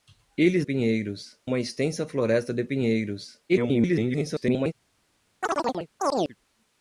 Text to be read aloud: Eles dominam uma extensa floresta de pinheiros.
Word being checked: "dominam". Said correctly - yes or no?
no